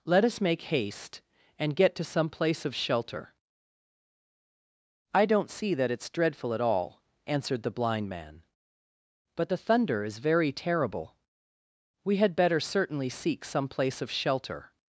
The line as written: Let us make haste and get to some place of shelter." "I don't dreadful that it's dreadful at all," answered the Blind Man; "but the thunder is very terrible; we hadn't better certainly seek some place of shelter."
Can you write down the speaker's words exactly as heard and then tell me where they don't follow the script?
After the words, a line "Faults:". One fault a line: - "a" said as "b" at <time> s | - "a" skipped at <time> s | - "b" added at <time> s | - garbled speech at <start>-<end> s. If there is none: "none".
Let us make haste and get to some place of shelter." "I don't see that it's dreadful at all," answered the Blind Man; "but the thunder is very terrible; we had better certainly seek some place of shelter."
Faults:
- "dreadful" said as "see" at 5.5 s
- "hadn't" said as "had" at 12.2 s